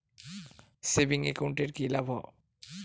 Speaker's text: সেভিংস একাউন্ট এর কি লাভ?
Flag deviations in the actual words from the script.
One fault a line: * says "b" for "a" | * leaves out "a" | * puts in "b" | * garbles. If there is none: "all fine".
all fine